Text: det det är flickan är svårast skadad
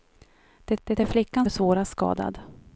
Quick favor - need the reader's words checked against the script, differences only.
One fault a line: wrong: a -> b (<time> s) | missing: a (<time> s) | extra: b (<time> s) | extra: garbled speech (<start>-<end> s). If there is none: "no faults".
no faults